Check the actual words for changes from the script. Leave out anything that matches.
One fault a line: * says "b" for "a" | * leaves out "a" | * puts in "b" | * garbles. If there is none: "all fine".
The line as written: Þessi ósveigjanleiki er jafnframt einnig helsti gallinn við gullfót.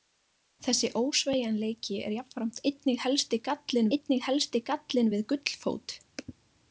* puts in "einnig helsti gallinn"